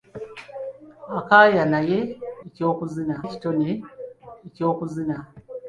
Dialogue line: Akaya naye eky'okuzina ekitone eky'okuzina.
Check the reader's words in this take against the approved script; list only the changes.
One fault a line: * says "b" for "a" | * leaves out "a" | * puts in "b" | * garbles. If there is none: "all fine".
all fine